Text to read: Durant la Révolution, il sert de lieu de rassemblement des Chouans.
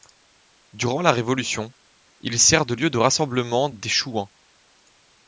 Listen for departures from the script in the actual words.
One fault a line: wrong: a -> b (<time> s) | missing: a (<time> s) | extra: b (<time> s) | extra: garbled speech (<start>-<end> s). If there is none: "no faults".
no faults